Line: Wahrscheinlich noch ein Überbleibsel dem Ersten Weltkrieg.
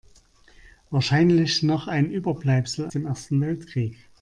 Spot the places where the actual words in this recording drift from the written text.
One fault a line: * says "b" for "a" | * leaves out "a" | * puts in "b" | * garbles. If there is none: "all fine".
all fine